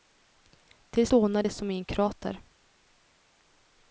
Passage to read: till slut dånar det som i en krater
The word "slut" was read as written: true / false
false